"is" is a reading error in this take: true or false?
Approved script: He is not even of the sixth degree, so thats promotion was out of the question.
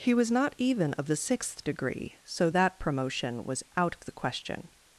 true